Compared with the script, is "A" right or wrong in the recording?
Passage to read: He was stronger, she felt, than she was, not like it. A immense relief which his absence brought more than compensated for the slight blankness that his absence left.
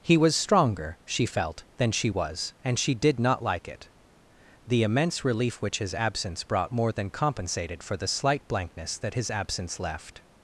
wrong